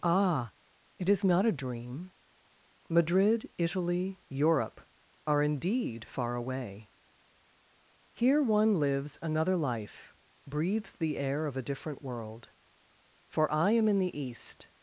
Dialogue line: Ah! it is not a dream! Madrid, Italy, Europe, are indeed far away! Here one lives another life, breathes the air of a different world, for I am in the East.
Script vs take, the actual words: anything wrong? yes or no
no